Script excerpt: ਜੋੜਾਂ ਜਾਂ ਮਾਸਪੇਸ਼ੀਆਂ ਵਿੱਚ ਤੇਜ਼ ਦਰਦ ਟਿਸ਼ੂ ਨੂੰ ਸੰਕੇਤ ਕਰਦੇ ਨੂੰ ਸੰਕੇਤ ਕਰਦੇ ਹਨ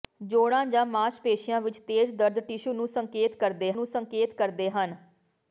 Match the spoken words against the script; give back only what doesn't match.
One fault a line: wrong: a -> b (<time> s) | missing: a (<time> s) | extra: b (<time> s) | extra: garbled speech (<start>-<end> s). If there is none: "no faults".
no faults